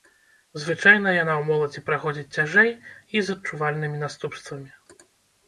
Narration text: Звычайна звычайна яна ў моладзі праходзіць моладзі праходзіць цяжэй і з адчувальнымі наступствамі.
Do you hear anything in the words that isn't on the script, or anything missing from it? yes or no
yes